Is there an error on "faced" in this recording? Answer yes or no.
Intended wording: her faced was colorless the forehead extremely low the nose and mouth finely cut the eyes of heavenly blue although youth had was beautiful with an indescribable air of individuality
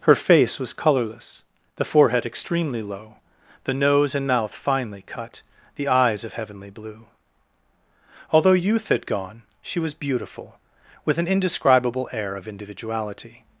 yes